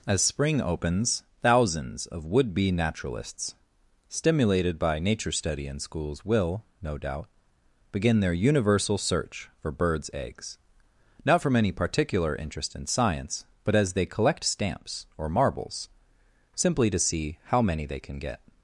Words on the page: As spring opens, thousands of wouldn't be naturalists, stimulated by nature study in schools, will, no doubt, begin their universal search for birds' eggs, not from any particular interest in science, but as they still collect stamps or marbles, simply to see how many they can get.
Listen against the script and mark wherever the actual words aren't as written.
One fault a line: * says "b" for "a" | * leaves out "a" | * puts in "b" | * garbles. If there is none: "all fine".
* says "would" for "wouldn't"
* leaves out "still"